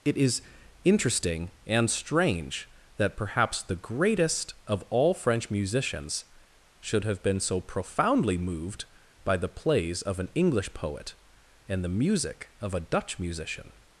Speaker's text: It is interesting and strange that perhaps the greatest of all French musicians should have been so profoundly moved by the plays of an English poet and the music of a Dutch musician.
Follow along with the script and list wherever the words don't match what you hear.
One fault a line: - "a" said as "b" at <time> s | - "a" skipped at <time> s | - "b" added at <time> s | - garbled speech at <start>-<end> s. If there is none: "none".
none